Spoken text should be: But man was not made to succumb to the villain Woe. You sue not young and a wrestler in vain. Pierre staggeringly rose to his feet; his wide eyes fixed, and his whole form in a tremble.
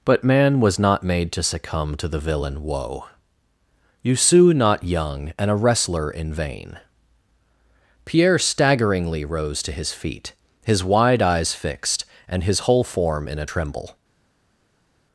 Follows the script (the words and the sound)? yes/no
yes